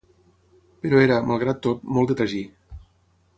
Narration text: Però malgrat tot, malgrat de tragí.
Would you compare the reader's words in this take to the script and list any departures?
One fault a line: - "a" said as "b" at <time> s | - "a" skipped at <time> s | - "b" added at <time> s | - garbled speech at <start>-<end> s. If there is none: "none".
- "era" added at 1.1 s
- "malgrat" said as "molt" at 2.0 s